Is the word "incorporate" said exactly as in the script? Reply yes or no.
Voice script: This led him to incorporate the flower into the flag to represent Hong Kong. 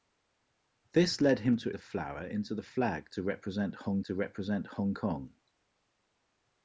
no